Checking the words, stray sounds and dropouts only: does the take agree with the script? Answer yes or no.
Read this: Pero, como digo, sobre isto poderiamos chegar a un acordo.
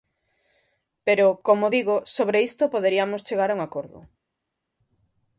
yes